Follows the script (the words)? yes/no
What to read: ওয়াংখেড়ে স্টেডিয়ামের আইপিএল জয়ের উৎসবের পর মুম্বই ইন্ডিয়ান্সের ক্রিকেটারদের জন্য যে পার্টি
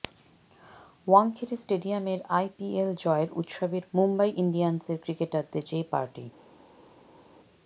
no